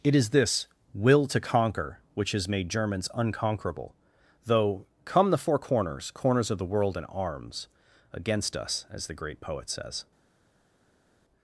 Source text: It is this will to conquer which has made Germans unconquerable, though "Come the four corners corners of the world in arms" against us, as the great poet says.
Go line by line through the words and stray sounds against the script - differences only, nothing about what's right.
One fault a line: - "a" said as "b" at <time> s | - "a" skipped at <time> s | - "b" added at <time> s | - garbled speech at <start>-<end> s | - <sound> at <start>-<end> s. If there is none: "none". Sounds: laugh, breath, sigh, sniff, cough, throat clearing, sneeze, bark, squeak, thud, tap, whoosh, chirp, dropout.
none